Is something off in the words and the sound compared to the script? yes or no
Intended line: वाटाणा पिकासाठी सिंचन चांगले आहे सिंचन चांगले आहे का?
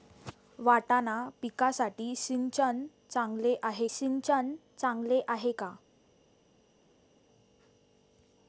no